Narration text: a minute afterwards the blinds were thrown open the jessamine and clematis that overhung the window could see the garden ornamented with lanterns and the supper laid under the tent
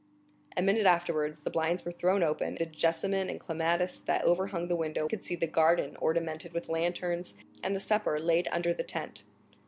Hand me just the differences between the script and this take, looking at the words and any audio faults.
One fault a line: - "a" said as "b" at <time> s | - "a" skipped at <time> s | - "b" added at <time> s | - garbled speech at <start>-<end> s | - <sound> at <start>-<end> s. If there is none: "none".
none